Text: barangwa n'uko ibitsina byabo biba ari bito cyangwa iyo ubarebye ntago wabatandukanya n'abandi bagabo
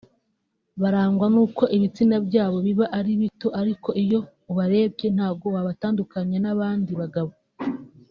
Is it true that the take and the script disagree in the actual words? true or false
true